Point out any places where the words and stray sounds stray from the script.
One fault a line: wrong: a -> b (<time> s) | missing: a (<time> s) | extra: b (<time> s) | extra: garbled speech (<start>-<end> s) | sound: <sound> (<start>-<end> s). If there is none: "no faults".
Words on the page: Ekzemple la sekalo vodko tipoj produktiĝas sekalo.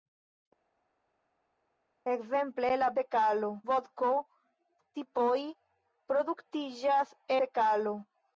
no faults